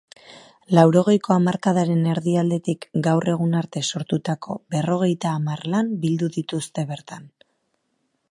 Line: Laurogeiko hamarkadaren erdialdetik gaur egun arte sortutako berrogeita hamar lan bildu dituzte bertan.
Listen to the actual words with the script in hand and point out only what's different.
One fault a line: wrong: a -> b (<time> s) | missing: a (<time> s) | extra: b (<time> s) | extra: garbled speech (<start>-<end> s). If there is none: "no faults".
no faults